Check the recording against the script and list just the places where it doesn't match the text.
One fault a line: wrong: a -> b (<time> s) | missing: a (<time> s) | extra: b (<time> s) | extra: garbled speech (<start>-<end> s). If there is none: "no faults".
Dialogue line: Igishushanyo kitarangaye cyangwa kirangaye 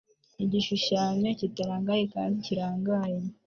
wrong: cyangwa -> kandi (2.1 s)